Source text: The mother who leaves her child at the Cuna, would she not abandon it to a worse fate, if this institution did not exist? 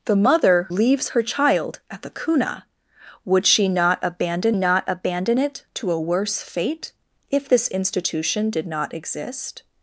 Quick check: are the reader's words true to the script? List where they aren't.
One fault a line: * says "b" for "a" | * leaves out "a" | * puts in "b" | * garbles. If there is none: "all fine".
* leaves out "who"
* puts in "not abandon"